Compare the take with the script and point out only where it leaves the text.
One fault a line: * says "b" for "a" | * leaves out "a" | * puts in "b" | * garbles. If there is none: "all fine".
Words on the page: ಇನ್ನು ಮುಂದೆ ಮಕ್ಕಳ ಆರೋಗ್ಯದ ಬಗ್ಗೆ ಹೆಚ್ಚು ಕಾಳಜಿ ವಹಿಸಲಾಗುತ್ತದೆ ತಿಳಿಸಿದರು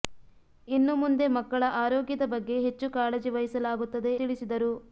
all fine